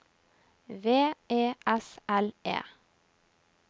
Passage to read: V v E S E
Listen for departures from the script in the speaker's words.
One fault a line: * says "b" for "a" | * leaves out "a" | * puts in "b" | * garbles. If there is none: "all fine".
* leaves out "v"
* puts in "L"